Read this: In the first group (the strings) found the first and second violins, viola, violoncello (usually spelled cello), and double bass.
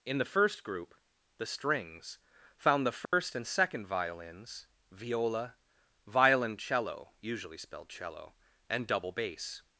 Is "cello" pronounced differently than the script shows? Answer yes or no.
no